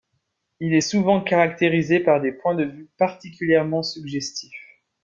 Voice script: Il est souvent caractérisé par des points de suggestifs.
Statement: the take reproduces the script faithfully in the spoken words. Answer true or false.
false